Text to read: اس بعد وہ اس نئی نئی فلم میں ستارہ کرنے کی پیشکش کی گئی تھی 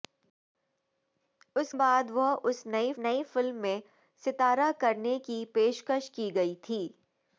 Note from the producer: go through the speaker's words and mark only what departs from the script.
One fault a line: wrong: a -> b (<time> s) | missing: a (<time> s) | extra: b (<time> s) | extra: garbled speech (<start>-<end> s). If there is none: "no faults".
no faults